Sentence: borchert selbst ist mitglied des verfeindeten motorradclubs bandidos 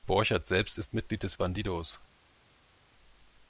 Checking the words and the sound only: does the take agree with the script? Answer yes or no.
no